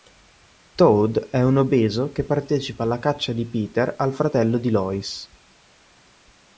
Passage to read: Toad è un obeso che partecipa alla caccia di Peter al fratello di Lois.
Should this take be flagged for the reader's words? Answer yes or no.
no